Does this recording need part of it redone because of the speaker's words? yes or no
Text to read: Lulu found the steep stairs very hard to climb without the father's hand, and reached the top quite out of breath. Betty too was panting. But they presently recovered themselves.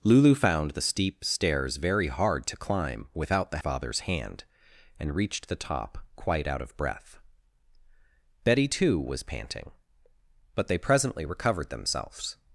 no